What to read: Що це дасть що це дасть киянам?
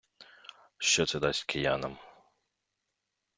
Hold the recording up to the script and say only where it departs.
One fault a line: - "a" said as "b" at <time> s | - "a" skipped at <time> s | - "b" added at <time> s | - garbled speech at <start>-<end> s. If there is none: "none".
- "що це дасть" skipped at 1.4 s